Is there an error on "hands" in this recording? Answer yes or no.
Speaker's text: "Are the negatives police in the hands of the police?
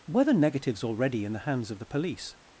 no